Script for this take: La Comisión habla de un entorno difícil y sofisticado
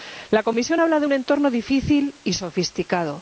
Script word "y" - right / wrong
right